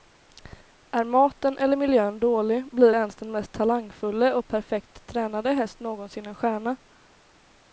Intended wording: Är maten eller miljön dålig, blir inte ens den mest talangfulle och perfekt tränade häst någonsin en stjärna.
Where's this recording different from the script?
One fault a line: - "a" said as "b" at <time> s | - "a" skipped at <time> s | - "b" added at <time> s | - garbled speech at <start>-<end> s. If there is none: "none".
- "inte" skipped at 3.0 s